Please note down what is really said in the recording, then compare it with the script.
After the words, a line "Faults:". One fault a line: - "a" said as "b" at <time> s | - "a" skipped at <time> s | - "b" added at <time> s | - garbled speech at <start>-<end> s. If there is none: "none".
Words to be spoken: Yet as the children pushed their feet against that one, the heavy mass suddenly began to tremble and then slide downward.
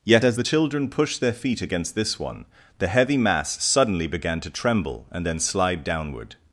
Yet as the children pushed their feet against this one, the heavy mass suddenly began to tremble and then slide downward.
Faults:
- "that" said as "this" at 1.9 s